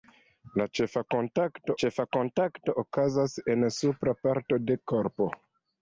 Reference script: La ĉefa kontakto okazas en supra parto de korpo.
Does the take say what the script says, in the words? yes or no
no